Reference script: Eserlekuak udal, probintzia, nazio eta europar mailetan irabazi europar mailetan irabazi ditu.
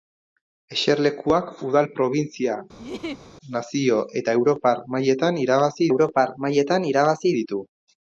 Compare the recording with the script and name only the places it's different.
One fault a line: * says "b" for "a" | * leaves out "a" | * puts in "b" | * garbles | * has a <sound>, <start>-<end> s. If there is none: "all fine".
* has a laugh, 2.8-3.3 s